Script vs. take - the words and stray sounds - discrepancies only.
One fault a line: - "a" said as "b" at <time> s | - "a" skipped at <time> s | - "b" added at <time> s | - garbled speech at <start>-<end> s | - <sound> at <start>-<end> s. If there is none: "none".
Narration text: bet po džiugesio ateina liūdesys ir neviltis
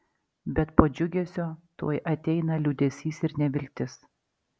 - "tuoj" added at 1.8 s